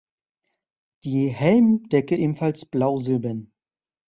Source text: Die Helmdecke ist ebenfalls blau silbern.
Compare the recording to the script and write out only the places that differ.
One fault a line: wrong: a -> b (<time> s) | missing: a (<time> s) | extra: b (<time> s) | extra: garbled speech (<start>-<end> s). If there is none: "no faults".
missing: ist (2.1 s)